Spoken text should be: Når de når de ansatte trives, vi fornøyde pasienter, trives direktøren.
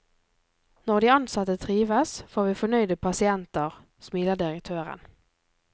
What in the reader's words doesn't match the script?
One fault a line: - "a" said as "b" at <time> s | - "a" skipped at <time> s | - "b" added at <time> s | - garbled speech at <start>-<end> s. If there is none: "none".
- "når de" skipped at 1.1 s
- "får" added at 2.3 s
- "trives" said as "smiler" at 4.0 s